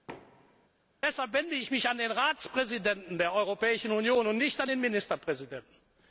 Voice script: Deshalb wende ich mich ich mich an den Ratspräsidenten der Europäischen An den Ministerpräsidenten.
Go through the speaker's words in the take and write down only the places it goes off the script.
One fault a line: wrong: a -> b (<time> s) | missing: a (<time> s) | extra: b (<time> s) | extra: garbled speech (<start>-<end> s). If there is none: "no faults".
missing: ich mich (1.9 s)
extra: Union und nicht (3.9 s)